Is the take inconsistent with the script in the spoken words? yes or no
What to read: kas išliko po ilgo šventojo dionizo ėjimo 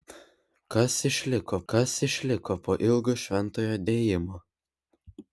yes